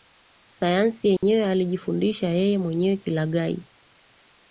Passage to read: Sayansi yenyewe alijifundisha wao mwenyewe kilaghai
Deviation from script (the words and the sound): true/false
true